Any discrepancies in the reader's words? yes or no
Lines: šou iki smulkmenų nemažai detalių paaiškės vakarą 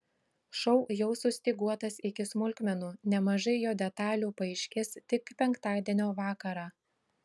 yes